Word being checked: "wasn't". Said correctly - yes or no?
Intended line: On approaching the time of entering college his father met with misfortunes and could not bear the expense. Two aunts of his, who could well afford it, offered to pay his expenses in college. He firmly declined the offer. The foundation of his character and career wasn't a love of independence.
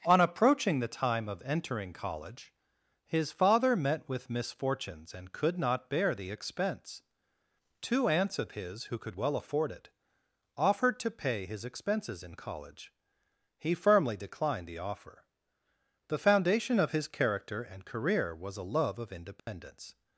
no